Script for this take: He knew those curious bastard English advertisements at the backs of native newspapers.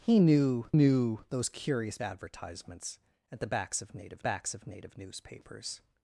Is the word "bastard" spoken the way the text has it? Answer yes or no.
no